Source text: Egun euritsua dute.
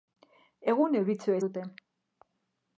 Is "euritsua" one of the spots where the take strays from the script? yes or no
no